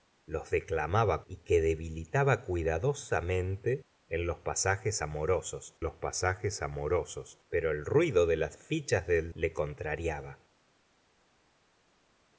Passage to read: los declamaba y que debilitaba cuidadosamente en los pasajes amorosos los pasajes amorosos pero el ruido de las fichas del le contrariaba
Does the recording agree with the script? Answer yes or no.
yes